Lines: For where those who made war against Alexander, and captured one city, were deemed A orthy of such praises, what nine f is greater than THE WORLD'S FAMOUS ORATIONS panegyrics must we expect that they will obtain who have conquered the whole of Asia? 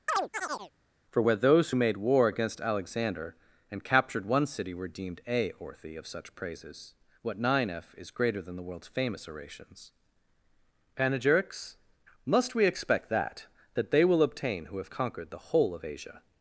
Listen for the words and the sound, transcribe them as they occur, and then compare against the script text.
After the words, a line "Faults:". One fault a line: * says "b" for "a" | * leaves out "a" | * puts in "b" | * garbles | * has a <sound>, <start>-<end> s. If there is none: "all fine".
For where those who made war against Alexander, and captured one city, were deemed A orthy of such praises, what nine f is greater than THE WORLD'S FAMOUS ORATIONS panegyrics must we expect that that they will obtain who have conquered the whole of Asia?
Faults:
* has a chirp, 0.1-0.7 s
* puts in "that"